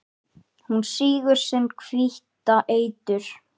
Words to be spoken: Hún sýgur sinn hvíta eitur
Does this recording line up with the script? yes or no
yes